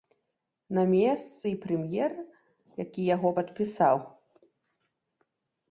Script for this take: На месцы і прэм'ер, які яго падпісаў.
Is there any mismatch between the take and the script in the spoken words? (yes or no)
no